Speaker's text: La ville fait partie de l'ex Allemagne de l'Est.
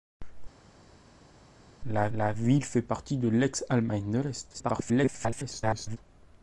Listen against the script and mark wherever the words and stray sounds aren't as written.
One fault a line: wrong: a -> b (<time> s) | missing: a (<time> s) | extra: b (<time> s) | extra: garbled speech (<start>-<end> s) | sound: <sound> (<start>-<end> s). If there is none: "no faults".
extra: la (2.1 s)
extra: garbled speech (4.5-6.0 s)